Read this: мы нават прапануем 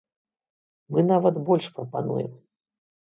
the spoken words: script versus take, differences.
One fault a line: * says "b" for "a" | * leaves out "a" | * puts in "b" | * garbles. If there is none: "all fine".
* puts in "больш"